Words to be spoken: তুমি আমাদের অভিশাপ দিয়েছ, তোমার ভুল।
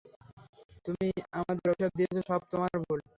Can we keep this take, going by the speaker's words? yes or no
no